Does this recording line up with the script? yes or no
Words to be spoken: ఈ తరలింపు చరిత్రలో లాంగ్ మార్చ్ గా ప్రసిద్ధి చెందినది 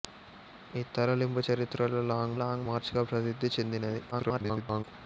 no